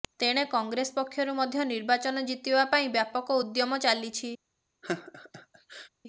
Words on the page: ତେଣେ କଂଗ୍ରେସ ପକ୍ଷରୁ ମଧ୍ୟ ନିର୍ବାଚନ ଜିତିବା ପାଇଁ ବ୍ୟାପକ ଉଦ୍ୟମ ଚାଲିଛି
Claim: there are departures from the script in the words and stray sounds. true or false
true